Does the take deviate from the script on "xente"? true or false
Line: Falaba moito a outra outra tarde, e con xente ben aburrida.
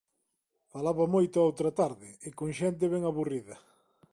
false